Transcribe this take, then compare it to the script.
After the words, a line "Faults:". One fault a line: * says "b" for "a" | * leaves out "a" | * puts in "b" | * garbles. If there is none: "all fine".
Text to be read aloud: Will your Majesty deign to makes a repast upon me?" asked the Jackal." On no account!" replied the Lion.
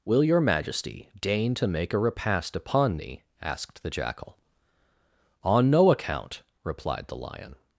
Will your Majesty deign to make a repast upon me?" asked the Jackal." On no account!" replied the Lion.
Faults:
* says "make" for "makes"